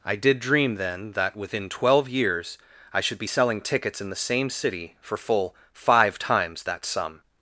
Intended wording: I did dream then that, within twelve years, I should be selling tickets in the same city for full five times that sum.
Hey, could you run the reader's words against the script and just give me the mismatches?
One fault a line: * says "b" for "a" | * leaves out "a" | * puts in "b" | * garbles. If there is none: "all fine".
all fine